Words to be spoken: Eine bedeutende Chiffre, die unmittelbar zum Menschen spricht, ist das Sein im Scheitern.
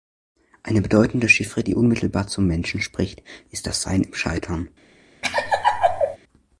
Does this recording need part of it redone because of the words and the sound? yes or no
yes